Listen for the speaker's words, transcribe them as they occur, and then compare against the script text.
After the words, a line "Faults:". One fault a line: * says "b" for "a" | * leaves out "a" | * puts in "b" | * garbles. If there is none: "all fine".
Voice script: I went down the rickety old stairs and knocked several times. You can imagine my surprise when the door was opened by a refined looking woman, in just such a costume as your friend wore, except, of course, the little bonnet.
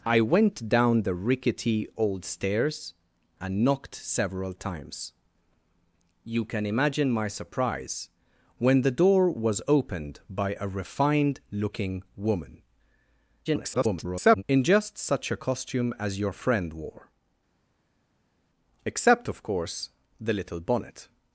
I went down the rickety old stairs and knocked several times. You can imagine my surprise when the door was opened by a refined looking woman, [garbled] in just such a costume as your friend wore, except, of course, the little bonnet.
Faults:
* garbles